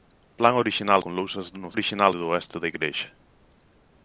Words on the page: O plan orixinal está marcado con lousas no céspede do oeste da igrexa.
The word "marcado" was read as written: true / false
false